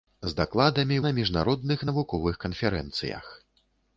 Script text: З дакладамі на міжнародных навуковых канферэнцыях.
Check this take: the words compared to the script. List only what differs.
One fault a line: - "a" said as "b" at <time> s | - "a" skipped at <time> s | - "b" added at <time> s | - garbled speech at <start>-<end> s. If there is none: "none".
none